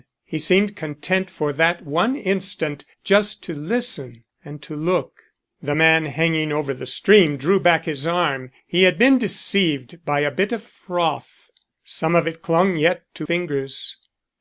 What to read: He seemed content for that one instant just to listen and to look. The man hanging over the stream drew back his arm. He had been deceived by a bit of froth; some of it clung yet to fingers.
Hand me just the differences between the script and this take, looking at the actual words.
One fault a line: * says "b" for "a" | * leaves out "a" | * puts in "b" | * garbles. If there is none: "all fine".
all fine